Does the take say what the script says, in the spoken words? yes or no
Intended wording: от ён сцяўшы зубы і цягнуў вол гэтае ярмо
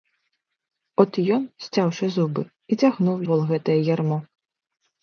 yes